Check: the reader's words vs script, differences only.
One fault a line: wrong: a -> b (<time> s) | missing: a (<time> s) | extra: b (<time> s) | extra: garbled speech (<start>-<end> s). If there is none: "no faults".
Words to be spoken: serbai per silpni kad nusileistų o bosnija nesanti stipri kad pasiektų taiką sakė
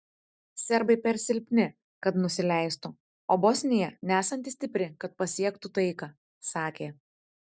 no faults